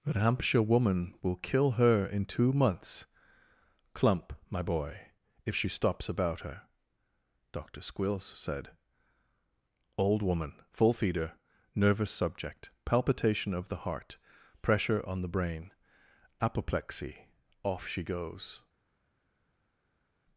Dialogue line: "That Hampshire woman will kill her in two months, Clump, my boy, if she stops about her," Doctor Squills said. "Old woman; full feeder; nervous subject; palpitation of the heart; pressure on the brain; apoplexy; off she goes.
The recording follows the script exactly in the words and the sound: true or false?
true